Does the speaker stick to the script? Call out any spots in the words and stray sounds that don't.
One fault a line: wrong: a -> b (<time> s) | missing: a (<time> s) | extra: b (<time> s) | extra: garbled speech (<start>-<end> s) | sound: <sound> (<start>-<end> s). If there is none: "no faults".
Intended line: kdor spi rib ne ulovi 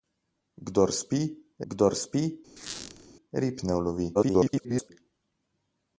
extra: kdor spi (1.7 s)
sound: squeak (2.6-3.1 s)
extra: garbled speech (4.1-4.9 s)